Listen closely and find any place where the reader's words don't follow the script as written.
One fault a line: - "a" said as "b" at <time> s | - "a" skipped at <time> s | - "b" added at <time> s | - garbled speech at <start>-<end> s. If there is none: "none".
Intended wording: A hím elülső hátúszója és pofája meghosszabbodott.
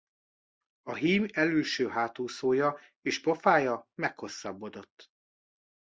none